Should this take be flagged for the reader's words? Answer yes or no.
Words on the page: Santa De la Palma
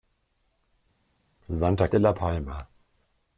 no